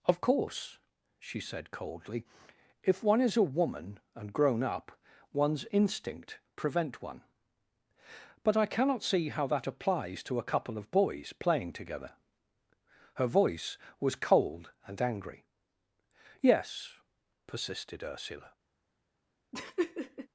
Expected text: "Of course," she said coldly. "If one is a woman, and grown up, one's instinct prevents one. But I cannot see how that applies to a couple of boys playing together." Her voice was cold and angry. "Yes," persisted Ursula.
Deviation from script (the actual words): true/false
true